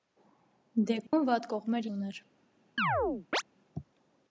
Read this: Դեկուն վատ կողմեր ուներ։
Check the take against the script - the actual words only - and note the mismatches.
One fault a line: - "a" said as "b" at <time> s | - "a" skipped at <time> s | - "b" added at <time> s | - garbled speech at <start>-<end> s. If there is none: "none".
none